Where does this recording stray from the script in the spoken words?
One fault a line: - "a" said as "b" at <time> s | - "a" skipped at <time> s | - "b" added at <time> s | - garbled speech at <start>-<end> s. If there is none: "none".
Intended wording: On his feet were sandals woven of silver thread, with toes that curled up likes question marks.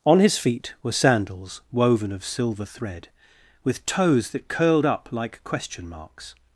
- "likes" said as "like" at 5.1 s